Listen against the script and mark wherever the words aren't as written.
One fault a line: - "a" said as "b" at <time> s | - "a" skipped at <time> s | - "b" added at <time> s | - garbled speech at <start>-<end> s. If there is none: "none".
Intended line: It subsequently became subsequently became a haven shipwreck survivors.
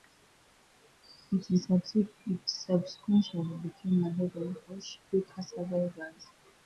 - "subsequently became" skipped at 4.0 s
- "for" added at 4.7 s